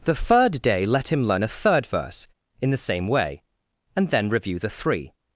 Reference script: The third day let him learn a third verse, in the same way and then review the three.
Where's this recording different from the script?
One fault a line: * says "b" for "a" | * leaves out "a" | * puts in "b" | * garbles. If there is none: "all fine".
all fine